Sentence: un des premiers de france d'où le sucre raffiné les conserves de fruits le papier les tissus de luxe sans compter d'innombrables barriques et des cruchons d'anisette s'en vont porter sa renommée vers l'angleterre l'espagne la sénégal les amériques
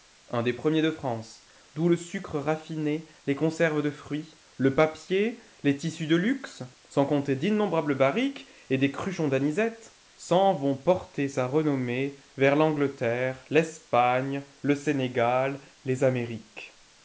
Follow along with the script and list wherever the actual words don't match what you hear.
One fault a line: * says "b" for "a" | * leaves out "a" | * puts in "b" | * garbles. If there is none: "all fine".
* says "le" for "la"